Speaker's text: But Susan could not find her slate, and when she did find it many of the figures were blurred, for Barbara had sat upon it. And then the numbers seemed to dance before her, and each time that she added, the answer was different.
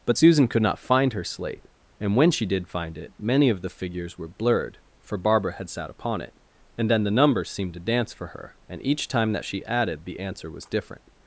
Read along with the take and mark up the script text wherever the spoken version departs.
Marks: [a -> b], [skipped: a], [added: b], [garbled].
But Susan could not find her slate, and when she did find it many of the figures were blurred, for Barbara had sat upon it. And then the numbers seemed to dance [before -> for] her, and each time that she added, the answer was different.